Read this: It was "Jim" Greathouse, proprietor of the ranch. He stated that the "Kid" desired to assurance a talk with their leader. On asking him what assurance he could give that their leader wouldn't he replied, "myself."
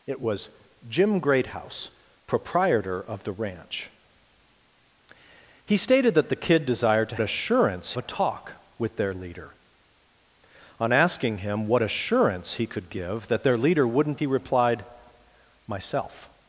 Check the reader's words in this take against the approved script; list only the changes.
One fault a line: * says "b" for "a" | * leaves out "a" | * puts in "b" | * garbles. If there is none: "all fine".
all fine